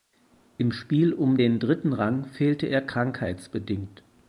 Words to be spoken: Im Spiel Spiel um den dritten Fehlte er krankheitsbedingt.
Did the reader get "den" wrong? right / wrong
right